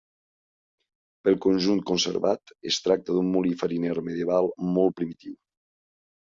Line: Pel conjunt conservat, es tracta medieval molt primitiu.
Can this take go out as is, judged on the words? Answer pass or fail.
fail